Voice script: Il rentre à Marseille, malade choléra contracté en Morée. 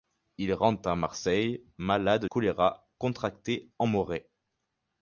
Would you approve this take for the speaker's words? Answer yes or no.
yes